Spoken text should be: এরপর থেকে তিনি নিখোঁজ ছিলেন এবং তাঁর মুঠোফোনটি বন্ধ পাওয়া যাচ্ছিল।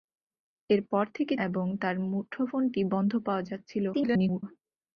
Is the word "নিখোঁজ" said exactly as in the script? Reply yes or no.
no